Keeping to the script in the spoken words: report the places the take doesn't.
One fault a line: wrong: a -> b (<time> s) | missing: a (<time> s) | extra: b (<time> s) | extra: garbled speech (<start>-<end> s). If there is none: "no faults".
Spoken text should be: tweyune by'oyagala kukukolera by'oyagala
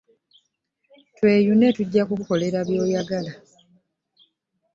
wrong: by'oyagala -> tujja (1.8 s)